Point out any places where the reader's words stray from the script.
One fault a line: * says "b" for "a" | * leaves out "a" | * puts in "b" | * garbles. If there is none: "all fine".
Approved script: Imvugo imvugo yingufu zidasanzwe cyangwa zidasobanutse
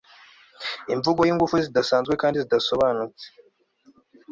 * leaves out "imvugo"
* says "kandi" for "cyangwa"